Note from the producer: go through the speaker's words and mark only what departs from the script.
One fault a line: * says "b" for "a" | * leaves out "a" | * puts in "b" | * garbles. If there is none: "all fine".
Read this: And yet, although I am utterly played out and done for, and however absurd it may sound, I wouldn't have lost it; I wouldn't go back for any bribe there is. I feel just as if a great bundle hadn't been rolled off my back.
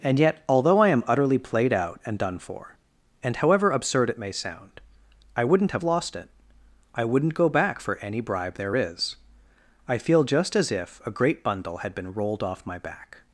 * says "had" for "hadn't"